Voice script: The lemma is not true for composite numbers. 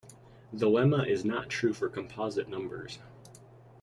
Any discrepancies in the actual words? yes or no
no